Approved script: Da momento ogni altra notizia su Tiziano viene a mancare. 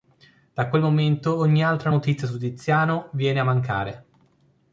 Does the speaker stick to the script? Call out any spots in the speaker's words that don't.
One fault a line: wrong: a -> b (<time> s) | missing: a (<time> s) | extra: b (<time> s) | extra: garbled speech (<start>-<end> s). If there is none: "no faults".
extra: quel (0.7 s)